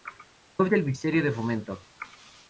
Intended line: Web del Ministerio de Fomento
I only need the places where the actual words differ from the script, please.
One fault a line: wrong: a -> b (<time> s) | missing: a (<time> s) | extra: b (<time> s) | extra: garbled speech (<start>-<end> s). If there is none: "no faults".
no faults